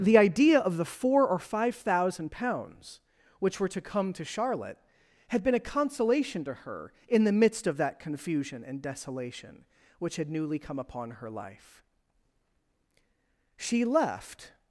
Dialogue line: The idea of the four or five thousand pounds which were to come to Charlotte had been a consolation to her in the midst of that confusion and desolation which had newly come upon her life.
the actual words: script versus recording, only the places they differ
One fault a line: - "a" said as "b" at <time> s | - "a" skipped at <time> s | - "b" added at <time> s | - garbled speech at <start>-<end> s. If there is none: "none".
- "She left" added at 13.6 s